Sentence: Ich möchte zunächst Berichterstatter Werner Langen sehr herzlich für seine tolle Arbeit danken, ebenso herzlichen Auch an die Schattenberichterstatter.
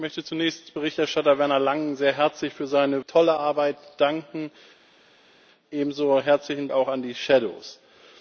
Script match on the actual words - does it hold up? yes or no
yes